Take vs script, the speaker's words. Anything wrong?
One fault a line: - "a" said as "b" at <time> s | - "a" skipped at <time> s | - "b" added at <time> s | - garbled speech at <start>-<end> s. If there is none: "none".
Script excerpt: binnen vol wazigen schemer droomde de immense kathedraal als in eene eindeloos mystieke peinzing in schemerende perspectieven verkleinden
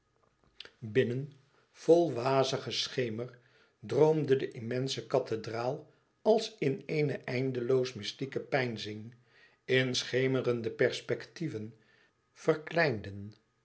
none